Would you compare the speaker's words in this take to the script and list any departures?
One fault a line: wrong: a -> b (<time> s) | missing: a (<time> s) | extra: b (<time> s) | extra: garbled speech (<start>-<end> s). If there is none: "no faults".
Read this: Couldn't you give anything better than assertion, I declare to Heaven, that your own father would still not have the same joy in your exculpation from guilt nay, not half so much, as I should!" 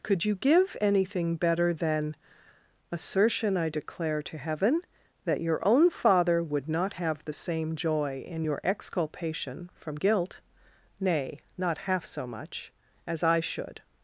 wrong: Couldn't -> Could (0.0 s)
missing: still (6.7 s)